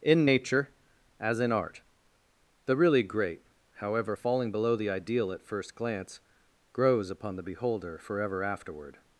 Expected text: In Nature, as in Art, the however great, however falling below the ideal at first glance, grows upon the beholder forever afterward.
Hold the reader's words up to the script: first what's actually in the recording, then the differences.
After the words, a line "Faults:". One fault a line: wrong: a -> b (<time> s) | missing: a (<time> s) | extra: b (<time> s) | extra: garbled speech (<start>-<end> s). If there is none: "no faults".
In Nature, as in Art, the really great, however falling below the ideal at first glance, grows upon the beholder forever afterward.
Faults:
wrong: however -> really (2.8 s)